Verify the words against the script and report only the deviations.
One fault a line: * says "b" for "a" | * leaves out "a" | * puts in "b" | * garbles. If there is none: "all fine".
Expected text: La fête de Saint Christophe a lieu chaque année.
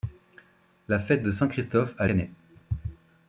* leaves out "lieu chaque"